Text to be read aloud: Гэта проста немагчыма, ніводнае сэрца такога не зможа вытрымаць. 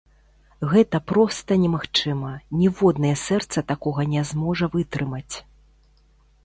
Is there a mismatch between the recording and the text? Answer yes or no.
no